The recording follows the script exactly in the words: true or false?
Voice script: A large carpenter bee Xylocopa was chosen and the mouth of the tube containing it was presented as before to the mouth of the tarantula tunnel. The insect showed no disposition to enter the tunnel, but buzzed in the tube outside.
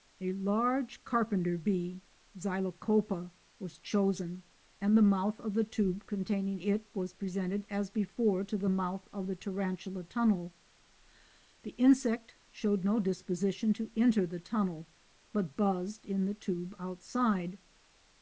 true